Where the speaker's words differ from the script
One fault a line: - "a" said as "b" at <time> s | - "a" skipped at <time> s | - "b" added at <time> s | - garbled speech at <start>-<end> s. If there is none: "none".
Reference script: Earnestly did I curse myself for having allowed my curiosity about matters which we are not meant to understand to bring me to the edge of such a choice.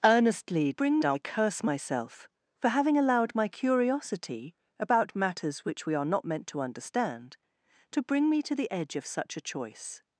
- "did" said as "bring" at 0.7 s